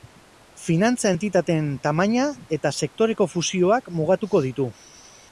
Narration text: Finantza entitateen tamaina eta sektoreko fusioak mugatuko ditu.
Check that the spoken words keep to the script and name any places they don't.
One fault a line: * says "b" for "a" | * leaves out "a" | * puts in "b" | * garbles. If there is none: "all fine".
all fine